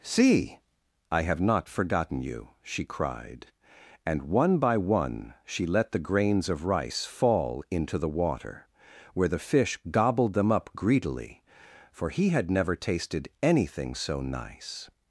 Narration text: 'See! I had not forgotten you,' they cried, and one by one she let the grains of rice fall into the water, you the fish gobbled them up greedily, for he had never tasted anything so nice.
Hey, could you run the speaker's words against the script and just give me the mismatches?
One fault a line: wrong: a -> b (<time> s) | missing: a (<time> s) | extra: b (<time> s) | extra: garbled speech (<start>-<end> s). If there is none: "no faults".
wrong: had -> have (1.2 s)
wrong: they -> she (2.6 s)
wrong: you -> where (9.1 s)